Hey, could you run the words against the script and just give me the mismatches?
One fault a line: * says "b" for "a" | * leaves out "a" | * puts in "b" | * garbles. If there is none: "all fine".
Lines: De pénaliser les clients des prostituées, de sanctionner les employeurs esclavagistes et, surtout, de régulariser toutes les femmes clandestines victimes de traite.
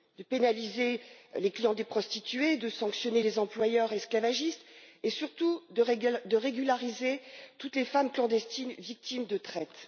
all fine